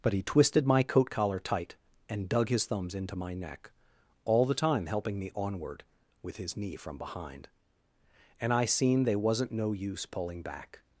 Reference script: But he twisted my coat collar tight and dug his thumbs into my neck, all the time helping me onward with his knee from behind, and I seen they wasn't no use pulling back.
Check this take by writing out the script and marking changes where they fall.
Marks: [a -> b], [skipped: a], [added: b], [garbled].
But he twisted my coat collar tight and dug his thumbs into my neck, all the time helping me onward with his knee from behind, and I seen they wasn't no use pulling back.